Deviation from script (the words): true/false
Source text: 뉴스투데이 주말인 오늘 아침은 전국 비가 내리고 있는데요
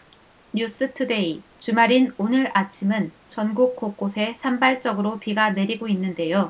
true